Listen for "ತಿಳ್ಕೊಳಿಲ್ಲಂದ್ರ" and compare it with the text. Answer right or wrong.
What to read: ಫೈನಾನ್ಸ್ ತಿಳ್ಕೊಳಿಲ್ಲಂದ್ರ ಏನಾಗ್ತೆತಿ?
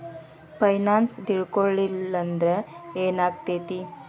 right